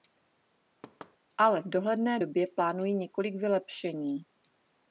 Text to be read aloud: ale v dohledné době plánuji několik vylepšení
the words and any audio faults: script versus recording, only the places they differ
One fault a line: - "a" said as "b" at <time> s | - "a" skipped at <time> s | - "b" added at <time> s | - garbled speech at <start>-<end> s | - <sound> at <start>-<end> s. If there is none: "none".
- thud at 0.8-1.2 s